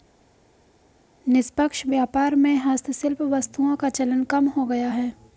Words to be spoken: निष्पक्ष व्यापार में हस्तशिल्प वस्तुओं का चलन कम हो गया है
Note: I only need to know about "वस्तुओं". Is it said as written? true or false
true